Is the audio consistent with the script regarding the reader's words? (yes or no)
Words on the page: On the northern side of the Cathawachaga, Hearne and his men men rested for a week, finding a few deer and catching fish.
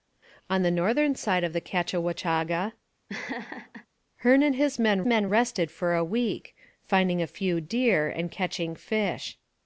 yes